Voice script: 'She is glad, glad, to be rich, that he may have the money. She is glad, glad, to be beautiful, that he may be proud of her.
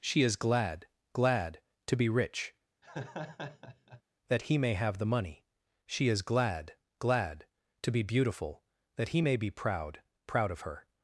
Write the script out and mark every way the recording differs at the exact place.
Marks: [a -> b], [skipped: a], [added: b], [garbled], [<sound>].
'She is glad, glad, to be rich, [laugh] that he may have the money. She is glad, glad, to be beautiful, that he may be proud [added: proud] of her.